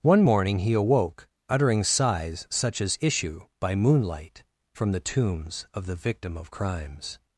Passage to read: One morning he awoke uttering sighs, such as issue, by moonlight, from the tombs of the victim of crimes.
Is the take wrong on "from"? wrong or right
right